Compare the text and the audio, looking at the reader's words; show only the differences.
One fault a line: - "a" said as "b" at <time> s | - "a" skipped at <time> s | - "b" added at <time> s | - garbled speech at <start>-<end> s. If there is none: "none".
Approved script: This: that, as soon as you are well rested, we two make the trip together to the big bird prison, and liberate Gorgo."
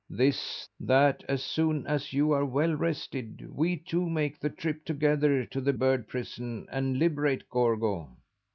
- "big" skipped at 5.7 s